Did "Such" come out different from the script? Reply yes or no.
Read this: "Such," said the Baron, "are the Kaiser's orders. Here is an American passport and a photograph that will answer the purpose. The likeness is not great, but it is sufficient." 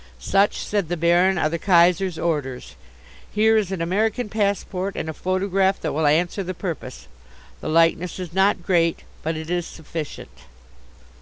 no